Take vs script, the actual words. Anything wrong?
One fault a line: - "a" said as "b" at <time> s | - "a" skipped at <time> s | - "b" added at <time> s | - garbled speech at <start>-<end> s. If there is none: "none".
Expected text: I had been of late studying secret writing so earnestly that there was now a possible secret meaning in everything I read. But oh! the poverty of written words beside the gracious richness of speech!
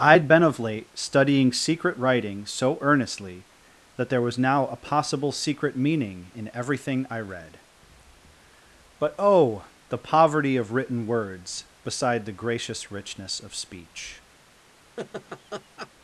none